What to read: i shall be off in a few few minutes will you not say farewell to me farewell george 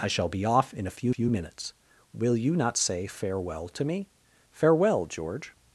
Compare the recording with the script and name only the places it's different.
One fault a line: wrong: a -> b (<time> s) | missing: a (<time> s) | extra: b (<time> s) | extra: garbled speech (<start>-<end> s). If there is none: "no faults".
no faults